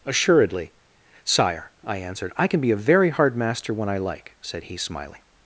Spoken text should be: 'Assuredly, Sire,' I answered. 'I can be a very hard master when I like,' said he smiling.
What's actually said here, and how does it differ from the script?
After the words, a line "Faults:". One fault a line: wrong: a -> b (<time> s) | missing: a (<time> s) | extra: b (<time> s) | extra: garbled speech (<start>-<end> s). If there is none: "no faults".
'Assuredly, Sire,' I answered. 'I can be a very hard master when I like,' said he smiling.
Faults:
no faults